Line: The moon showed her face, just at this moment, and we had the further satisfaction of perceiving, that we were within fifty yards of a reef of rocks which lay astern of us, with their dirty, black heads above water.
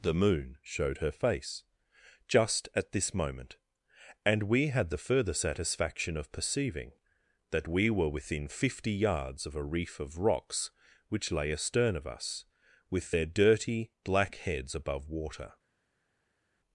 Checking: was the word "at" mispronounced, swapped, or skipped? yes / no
no